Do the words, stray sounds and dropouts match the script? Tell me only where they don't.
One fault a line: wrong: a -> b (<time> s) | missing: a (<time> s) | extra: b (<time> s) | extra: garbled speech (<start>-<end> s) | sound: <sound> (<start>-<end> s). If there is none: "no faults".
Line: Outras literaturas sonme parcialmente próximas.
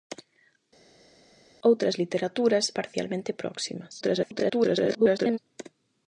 missing: sonme (2.6 s)
extra: garbled speech (4.0-5.4 s)